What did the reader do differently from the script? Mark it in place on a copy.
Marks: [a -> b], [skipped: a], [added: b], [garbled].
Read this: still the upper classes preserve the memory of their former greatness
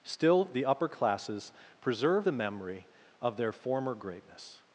still the upper classes preserve the memory of their former greatness